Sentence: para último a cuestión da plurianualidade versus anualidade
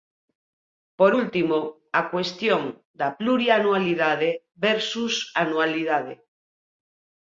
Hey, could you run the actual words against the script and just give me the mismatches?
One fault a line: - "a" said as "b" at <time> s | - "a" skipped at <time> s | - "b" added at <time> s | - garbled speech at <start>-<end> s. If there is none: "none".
- "para" said as "por" at 1.0 s